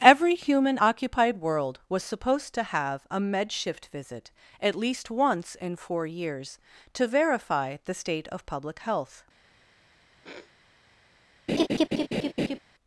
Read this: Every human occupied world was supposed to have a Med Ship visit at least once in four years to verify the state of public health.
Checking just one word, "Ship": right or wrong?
wrong